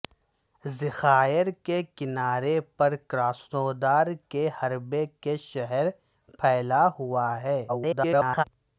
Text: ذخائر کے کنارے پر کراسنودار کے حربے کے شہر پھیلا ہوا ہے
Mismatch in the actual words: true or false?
true